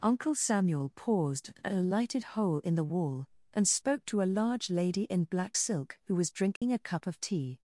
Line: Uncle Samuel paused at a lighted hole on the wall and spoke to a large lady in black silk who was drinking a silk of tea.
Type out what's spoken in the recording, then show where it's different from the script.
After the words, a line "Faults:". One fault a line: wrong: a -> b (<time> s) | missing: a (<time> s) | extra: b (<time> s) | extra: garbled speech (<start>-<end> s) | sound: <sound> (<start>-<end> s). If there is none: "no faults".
Uncle Samuel paused at a lighted hole in the wall and spoke to a large lady in black silk who was drinking a cup of tea.
Faults:
wrong: on -> in (2.6 s)
sound: dropout (6.6-6.6 s)
wrong: silk -> cup (6.8 s)